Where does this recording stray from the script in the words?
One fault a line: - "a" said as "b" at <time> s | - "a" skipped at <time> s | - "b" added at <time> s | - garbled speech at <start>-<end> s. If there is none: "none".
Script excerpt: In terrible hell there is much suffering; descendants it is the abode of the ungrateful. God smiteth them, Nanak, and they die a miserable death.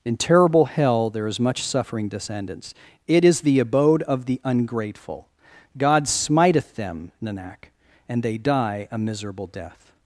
none